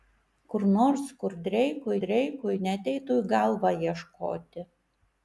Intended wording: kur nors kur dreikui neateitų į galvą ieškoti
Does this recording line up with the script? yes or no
no